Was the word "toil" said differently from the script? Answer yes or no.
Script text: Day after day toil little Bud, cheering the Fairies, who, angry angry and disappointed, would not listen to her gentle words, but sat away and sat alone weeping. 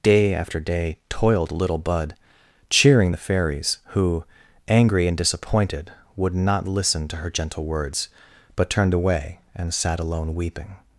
yes